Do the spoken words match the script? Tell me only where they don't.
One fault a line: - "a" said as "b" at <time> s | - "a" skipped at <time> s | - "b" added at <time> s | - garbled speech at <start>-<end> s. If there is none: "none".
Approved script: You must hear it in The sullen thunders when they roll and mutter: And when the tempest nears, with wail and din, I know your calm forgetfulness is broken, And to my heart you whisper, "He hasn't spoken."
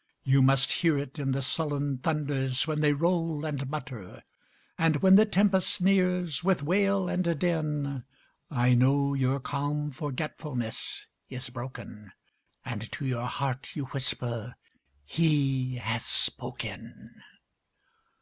- "my" said as "your" at 13.1 s
- "hasn't" said as "has" at 15.8 s